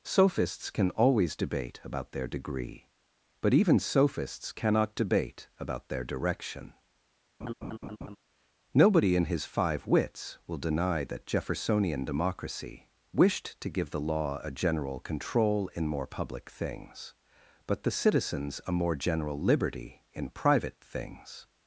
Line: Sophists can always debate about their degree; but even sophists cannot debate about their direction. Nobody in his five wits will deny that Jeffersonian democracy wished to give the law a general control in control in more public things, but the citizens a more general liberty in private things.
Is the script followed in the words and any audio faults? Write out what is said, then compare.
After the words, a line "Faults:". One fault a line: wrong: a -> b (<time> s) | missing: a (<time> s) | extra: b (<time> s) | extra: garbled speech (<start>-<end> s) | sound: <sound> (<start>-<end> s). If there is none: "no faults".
Sophists can always debate about their degree; but even sophists cannot debate about their direction. Nobody in his five wits will deny that Jeffersonian democracy wished to give the law a general control in more public things, but the citizens a more general liberty in private things.
Faults:
sound: laugh (7.4-8.2 s)
missing: control in (15.9 s)